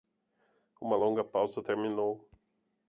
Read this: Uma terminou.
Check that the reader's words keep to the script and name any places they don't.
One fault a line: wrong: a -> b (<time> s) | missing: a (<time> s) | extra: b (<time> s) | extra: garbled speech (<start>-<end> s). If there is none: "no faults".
extra: longa pausa (1.0 s)